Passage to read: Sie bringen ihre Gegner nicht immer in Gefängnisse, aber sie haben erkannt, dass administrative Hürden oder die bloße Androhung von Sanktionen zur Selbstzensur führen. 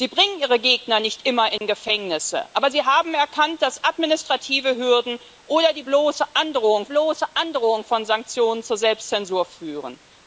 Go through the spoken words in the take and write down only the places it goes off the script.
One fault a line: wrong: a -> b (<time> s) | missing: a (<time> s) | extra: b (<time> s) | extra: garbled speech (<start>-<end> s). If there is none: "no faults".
extra: bloße Androhung (6.8 s)